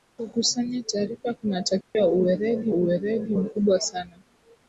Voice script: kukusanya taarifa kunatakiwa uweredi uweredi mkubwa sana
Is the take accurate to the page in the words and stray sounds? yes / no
no